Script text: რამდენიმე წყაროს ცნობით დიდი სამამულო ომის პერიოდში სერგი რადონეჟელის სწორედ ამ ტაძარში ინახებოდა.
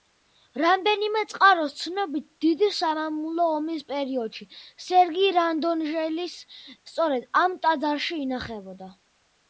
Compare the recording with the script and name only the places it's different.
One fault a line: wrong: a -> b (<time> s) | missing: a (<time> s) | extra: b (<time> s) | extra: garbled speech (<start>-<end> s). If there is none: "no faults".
no faults